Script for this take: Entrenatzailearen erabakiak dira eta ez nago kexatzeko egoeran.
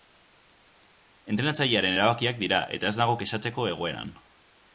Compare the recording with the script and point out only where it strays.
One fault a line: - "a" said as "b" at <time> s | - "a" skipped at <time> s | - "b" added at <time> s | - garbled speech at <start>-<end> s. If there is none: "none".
none